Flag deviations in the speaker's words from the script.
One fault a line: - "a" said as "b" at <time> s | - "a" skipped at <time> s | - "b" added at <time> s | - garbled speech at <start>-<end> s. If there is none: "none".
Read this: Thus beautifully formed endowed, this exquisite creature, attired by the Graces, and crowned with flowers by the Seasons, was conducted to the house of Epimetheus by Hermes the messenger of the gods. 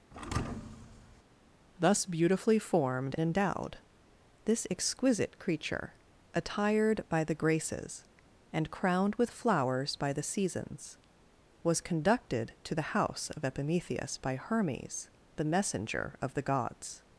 none